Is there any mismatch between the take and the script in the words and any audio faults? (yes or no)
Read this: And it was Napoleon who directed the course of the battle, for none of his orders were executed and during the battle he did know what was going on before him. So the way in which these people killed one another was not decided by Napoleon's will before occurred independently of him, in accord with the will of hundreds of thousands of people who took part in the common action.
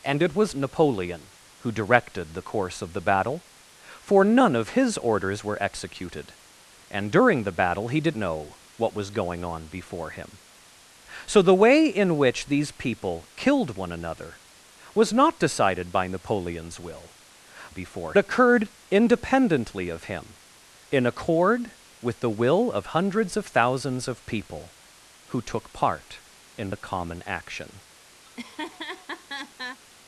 yes